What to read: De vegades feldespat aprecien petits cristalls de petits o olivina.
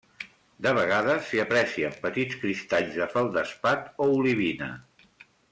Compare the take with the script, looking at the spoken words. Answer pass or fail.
fail